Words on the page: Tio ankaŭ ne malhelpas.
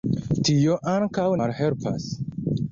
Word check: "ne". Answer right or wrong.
wrong